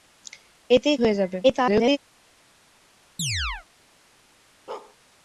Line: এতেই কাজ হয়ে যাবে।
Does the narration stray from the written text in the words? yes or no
yes